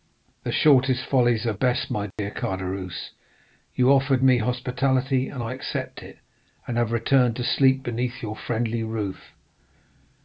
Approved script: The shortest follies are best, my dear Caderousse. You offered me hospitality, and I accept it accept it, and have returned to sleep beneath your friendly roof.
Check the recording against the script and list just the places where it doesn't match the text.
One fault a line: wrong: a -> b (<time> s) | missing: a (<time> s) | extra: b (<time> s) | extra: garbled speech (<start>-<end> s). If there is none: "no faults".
missing: accept it (6.2 s)